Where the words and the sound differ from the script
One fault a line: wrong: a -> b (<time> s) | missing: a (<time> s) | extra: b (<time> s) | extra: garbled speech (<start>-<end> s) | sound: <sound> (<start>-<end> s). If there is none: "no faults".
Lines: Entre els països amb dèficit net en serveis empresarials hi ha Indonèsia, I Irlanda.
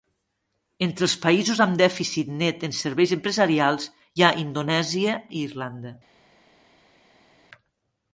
no faults